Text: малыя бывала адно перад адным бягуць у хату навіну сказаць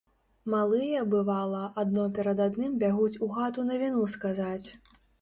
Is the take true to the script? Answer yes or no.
yes